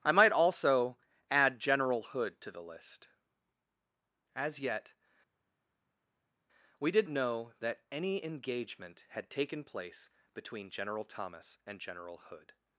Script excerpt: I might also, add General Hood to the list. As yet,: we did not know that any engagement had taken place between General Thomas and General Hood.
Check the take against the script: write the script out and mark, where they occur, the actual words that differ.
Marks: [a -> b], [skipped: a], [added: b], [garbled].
I might also, add General Hood to the list. As yet,: we did [skipped: not] know that any engagement had taken place between General Thomas and General Hood.